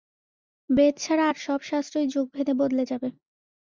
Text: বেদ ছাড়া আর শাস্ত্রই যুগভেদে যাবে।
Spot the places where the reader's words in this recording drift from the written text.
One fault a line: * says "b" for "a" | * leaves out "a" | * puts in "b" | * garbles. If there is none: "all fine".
* puts in "সব"
* puts in "বদলে"